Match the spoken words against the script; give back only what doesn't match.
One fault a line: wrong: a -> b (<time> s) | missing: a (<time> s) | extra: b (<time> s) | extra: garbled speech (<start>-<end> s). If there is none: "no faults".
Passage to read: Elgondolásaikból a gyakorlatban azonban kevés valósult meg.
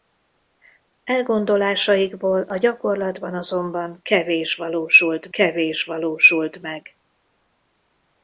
extra: kevés valósult (5.3 s)